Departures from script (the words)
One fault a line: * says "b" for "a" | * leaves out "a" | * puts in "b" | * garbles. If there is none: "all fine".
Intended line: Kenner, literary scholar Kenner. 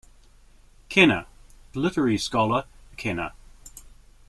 all fine